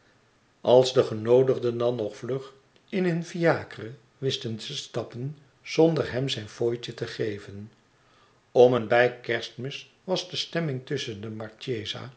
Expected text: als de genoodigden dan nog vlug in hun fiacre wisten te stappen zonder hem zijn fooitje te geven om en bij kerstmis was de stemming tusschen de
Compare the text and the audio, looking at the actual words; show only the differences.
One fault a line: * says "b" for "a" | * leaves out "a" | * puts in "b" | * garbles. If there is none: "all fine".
all fine